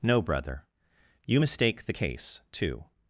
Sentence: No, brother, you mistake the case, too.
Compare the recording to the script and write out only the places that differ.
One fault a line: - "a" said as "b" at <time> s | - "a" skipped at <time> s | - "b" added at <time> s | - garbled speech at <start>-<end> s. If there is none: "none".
none